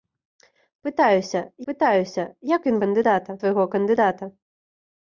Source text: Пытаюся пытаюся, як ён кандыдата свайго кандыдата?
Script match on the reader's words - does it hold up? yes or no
yes